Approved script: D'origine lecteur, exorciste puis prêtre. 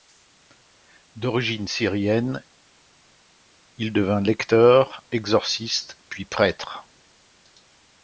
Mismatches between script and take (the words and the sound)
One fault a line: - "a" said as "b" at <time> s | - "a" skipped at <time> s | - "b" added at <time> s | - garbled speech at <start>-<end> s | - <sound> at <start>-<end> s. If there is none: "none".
- "syrienne il devint" added at 1.7 s